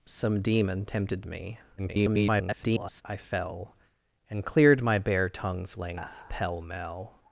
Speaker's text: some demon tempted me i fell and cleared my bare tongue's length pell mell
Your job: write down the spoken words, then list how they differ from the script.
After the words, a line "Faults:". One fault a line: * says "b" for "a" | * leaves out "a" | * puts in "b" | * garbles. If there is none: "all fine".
some demon tempted me [garbled] i fell and cleared my bare tongue's length pell mell
Faults:
* garbles